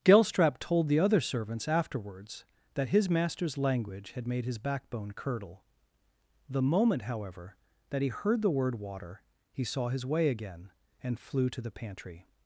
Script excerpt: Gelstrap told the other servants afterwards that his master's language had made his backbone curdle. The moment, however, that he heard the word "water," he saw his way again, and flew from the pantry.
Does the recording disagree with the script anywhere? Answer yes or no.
yes